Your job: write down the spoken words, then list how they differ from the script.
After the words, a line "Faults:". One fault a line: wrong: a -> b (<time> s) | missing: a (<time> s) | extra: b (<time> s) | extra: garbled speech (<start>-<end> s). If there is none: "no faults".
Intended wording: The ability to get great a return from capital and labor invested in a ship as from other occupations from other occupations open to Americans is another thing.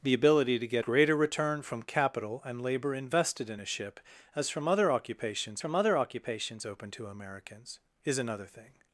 The ability to get great a return from capital and labor invested in a ship as from other occupations from other occupations open to Americans is another thing.
Faults:
no faults